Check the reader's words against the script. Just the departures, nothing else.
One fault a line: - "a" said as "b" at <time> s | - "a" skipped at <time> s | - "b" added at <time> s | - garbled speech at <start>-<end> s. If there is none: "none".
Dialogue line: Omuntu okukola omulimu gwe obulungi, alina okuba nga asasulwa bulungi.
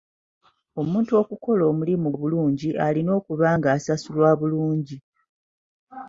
- "gwe" skipped at 2.1 s